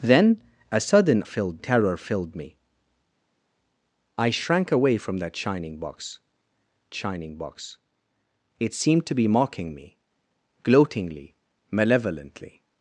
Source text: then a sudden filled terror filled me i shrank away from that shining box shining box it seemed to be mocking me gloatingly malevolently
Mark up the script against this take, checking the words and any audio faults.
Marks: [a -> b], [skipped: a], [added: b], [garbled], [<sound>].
then a sudden filled terror filled me i shrank away from that shining box shining box it seemed to be mocking me gloatingly malevolently